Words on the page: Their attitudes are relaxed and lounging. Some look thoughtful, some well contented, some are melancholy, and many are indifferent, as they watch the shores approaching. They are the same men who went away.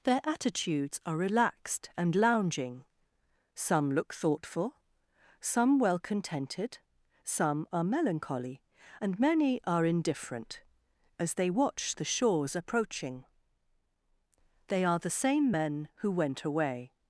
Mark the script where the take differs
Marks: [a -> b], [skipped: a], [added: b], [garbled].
Their attitudes are relaxed and lounging. Some look thoughtful, some well contented, some are melancholy, and many are indifferent, as they watch the shores approaching. They are the same men who went away.